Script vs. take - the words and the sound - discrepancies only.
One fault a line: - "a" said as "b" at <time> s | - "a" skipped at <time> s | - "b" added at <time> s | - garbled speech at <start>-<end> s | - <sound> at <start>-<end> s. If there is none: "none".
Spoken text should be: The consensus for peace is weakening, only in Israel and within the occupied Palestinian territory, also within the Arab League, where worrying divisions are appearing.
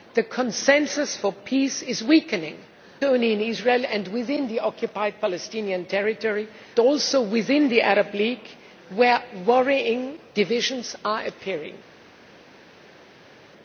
none